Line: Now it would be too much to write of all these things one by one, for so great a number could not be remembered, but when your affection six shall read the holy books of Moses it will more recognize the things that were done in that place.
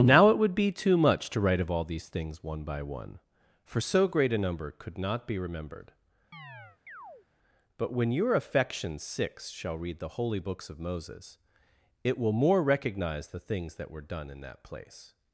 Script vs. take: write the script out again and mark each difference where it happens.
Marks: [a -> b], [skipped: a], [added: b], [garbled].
Now it would be too much to write of all these things one by one, for so great a number could not be remembered, but when your affection six shall read the holy books of Moses it will more recognize the things that were done in that place.